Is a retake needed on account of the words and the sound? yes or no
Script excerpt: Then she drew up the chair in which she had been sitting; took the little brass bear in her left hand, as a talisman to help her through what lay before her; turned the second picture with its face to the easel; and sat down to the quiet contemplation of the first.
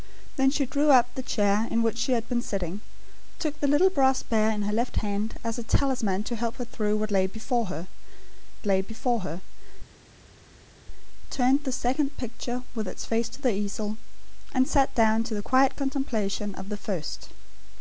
yes